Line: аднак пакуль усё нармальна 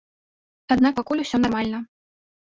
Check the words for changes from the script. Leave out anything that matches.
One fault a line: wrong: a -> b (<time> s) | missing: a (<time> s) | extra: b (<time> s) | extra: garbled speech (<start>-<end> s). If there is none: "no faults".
no faults